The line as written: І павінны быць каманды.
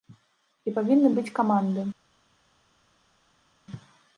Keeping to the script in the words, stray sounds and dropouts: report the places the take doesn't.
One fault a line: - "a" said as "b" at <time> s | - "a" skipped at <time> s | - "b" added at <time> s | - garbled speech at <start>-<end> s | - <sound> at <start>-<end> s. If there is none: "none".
none